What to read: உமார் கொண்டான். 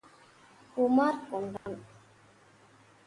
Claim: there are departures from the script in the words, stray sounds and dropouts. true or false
true